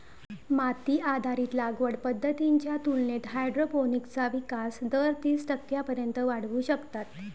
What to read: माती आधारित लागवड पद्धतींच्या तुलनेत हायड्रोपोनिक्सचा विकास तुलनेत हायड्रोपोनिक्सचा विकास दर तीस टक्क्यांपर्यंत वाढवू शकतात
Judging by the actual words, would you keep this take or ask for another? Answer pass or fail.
fail